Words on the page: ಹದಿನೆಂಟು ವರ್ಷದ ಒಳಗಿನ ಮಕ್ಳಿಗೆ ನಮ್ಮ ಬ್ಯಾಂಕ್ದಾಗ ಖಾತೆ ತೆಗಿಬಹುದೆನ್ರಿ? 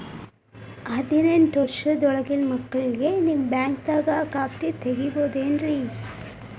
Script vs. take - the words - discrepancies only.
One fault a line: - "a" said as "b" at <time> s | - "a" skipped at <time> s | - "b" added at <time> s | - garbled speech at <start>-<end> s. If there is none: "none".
- "ನಮ್ಮ" said as "ನಿಮ್ಮ" at 3.2 s